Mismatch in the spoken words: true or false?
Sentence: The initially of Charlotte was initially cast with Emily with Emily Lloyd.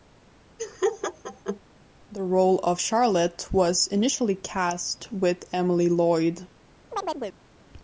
true